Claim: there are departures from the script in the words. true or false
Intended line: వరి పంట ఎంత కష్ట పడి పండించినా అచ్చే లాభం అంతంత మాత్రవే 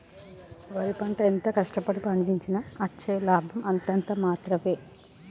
false